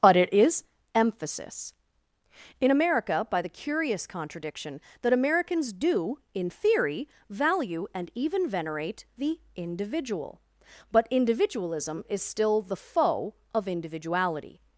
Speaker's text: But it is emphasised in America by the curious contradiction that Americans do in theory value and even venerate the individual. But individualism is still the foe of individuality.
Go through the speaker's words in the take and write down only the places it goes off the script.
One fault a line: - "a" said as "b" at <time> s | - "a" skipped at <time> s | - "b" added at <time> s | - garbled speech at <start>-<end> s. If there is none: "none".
- "emphasised" said as "emphasis" at 0.9 s